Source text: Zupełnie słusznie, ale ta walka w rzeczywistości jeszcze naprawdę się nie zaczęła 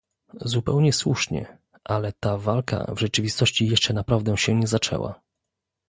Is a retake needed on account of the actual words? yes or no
no